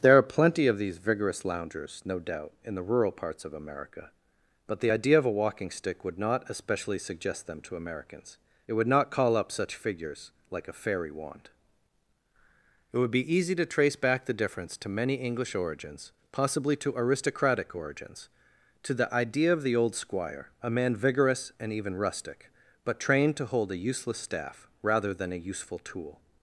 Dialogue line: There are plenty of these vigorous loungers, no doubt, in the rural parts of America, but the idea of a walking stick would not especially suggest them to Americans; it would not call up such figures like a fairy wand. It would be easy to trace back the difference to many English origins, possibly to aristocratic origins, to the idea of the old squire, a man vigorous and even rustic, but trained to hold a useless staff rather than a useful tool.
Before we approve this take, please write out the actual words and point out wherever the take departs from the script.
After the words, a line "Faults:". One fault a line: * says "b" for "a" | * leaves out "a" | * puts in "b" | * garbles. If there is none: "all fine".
There are plenty of these vigorous loungers, no doubt, in the rural parts of America, but the idea of a walking stick would not especially suggest them to Americans; it would not call up such figures like a fairy wand. It would be easy to trace back the difference to many English origins, possibly to aristocratic origins, to the idea of the old squire, a man vigorous and even rustic, but trained to hold a useless staff rather than a useful tool.
Faults:
all fine